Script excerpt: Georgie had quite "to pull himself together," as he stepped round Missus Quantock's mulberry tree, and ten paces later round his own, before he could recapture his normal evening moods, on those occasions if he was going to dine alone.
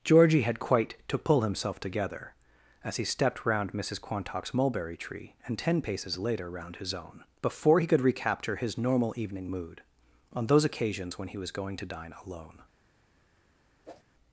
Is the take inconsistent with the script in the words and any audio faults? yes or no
yes